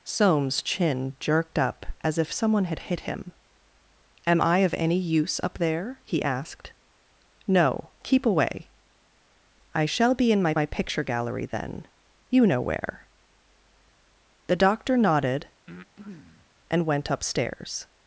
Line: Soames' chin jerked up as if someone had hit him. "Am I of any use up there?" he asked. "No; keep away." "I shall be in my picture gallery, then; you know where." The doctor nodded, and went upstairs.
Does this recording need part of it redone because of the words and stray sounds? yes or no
yes